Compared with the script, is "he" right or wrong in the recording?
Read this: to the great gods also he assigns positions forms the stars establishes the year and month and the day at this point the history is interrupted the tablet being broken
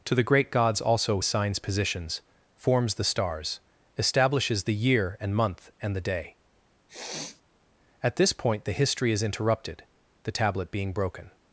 wrong